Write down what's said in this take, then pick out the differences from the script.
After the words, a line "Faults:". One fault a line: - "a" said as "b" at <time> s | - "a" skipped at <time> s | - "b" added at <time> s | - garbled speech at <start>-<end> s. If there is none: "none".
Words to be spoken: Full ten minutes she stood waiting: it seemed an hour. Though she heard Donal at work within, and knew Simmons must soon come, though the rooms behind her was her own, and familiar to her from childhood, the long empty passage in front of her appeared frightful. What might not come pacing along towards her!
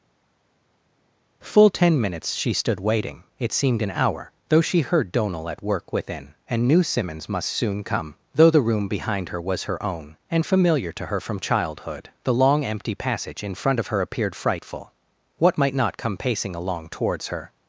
Full ten minutes she stood waiting: it seemed an hour. Though she heard Donal at work within, and knew Simmons must soon come, though the room behind her was her own, and familiar to her from childhood, the long empty passage in front of her appeared frightful. What might not come pacing along towards her!
Faults:
- "rooms" said as "room" at 8.6 s